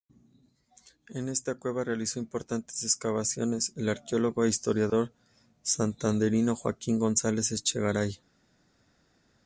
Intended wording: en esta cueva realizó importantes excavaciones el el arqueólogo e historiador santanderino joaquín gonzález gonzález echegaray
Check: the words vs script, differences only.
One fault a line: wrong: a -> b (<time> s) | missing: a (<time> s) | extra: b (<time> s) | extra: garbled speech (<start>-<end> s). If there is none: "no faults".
missing: el (3.9 s)
missing: gonzález (7.5 s)